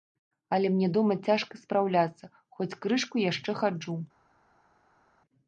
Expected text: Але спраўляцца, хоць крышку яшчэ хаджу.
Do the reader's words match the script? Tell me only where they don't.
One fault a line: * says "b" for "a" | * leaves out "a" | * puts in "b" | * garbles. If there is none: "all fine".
* puts in "мне дома цяжка"